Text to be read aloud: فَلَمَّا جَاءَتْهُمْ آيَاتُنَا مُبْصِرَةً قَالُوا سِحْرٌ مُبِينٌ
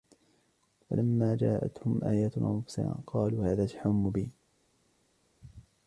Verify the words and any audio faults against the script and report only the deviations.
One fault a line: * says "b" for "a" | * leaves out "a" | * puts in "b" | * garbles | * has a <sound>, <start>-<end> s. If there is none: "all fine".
* puts in "هَذَا"